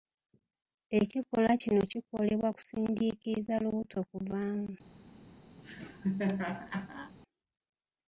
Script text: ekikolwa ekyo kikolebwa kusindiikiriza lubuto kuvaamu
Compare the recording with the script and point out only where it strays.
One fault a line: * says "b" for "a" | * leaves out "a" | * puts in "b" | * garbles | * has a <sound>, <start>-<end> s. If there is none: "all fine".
* says "kino" for "ekyo"
* has a laugh, 5.6-7.1 s